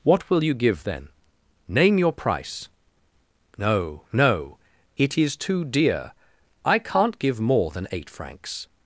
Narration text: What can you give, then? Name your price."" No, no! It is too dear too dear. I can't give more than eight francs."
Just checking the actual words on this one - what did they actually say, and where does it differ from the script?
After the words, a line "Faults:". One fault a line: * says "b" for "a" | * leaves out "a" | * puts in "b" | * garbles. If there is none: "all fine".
What will you give, then? Name your price."" No, no! It is too dear. I can't give more than eight francs."
Faults:
* says "will" for "can"
* leaves out "too dear"